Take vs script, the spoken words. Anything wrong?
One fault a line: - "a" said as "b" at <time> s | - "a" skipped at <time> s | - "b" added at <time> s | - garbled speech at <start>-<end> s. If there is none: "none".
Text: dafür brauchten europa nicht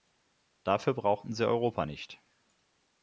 - "sie" added at 1.3 s